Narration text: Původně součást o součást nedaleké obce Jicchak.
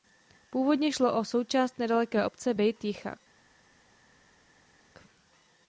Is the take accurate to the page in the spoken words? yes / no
no